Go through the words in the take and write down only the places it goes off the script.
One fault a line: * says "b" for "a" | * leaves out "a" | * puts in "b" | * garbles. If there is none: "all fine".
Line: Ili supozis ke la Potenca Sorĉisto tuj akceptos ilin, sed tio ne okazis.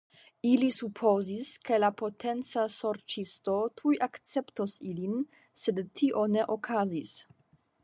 all fine